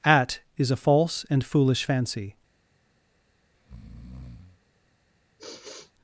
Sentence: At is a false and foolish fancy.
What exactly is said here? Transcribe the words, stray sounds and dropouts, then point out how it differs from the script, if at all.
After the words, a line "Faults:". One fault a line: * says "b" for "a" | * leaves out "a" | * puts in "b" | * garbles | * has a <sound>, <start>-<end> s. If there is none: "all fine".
At is a false and foolish fancy.
Faults:
* has a breath, 3.5-4.6 s
* has a sigh, 5.4-5.9 s